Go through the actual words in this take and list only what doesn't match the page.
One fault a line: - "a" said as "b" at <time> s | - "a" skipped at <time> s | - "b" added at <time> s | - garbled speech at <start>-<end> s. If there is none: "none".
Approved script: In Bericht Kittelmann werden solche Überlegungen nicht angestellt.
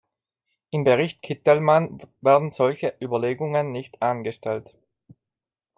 none